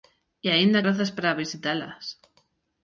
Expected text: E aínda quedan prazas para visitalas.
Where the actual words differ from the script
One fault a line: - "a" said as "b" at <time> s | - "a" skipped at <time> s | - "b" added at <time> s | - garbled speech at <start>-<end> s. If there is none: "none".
- "quedan" skipped at 0.8 s